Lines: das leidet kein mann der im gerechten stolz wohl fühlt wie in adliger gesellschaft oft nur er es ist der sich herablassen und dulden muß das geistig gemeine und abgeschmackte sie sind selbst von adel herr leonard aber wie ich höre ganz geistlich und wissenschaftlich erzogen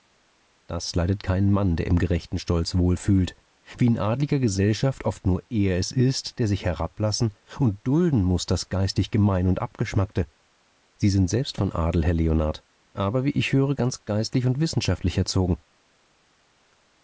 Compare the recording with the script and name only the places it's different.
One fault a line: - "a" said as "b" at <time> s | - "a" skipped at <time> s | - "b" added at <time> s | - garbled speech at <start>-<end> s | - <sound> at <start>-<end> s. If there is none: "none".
none